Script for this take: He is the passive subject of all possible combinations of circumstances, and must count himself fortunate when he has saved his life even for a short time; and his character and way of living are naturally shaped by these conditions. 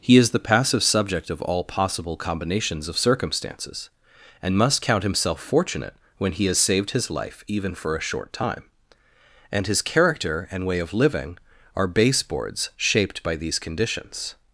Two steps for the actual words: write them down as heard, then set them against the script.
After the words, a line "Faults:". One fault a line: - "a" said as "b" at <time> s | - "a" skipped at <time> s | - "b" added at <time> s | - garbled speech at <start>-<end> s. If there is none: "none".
He is the passive subject of all possible combinations of circumstances, and must count himself fortunate when he has saved his life even for a short time; and his character and way of living are baseboards shaped by these conditions.
Faults:
- "naturally" said as "baseboards" at 11.9 s